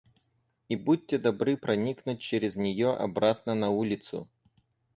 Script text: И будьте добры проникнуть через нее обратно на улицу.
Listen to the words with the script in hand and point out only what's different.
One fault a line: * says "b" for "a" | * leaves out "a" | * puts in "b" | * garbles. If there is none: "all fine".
all fine